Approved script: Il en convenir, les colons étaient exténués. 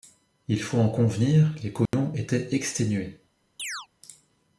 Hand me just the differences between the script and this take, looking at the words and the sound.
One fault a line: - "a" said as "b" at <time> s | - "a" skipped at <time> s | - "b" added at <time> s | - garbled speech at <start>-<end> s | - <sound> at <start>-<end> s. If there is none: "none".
- "faut" added at 0.6 s
- dropout at 1.9-1.9 s
- chirp at 3.6-3.9 s